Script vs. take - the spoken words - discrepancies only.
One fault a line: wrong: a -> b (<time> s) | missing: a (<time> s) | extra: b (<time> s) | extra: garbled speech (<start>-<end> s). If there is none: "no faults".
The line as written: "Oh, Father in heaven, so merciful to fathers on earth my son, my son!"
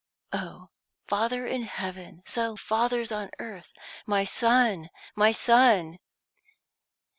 missing: merciful to (2.5 s)